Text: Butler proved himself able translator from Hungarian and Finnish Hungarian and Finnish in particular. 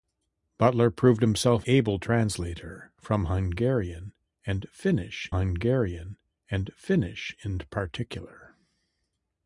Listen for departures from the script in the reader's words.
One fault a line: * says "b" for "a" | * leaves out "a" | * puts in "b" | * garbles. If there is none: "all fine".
all fine